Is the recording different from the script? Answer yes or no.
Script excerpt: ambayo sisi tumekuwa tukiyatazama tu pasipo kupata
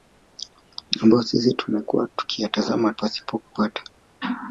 yes